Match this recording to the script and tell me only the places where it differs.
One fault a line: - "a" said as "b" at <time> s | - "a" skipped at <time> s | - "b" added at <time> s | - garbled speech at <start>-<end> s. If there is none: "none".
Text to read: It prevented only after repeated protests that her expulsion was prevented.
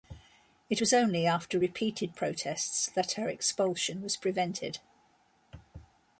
- "prevented" said as "was" at 0.8 s